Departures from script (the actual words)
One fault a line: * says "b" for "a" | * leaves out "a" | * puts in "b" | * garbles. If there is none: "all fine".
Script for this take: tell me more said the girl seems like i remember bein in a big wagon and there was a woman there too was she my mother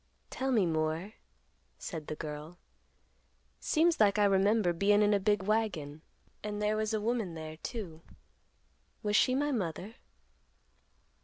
all fine